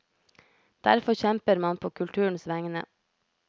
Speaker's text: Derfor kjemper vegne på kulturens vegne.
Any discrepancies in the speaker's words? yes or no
yes